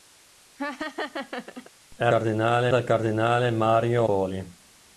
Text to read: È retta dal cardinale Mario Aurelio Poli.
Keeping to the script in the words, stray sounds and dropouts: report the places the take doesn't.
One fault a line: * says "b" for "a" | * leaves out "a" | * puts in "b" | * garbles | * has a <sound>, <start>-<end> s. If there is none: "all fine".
* has a laugh, 0.6-1.7 s
* says "cardinale" for "retta"
* leaves out "Aurelio"